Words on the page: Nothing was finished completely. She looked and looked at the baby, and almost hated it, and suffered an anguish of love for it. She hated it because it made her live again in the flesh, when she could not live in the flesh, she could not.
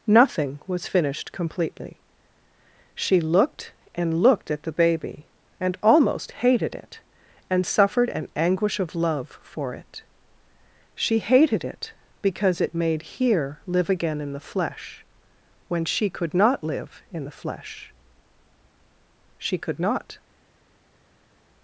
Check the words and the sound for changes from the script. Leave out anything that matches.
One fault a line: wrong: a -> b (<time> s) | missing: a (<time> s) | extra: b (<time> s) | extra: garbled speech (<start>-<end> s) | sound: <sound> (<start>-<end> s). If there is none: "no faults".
wrong: her -> here (13.0 s)